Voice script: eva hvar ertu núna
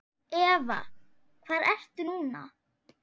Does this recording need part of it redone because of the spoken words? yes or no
no